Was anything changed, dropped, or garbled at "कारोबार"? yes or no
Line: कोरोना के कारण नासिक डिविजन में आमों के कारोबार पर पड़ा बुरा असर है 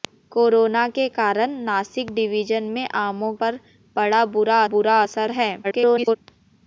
yes